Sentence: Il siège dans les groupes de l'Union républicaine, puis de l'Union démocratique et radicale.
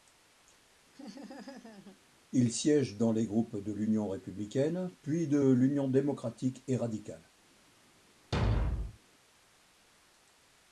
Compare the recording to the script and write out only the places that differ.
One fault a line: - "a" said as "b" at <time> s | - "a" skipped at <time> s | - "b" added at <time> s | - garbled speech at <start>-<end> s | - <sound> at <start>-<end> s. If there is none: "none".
- laugh at 0.9-2.0 s
- thud at 8.3-9.0 s